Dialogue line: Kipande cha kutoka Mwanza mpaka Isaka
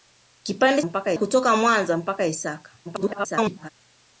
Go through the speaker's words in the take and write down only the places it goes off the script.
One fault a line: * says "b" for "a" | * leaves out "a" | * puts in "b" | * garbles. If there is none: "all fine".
* says "mpaka" for "cha"
* garbles